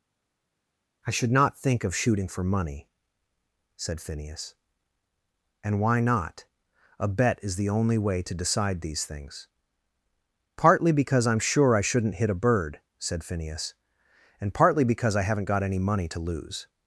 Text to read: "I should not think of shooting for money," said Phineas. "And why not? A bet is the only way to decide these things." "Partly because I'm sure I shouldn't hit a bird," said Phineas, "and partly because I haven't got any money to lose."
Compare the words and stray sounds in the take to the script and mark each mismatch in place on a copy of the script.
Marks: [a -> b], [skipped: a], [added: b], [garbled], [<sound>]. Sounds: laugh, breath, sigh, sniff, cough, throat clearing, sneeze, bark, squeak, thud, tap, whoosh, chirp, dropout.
"I should not think of shooting for money," said Phineas. "And why not? A bet is the only way to decide these things." "Partly because I'm sure I shouldn't hit a bird," said Phineas, "and partly because I haven't got any money to lose."